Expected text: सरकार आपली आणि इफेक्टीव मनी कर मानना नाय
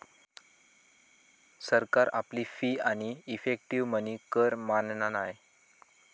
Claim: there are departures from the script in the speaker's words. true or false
true